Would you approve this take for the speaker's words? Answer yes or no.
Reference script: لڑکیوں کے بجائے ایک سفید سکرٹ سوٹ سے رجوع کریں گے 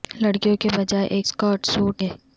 no